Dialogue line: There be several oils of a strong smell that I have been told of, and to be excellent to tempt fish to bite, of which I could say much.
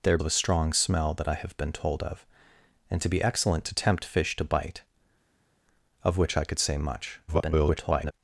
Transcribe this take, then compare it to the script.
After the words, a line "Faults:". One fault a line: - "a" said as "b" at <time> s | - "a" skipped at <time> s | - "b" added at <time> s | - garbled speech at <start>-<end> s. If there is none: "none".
There of a strong smell that I have been told of, and to be excellent to tempt fish to bite, of which I could say much. [garbled]
Faults:
- "be several oils" skipped at 0.2 s
- garbled speech at 7.3-8.1 s